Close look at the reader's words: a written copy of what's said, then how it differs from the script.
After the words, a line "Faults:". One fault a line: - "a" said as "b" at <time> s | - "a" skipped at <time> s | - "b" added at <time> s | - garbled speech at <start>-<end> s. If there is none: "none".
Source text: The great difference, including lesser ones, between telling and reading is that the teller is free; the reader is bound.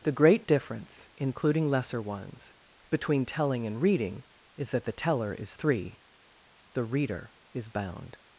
The great difference, including lesser ones, between telling and reading is that the teller is three; the reader is bound.
Faults:
- "free" said as "three" at 5.5 s